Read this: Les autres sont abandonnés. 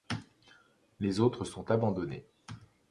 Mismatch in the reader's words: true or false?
false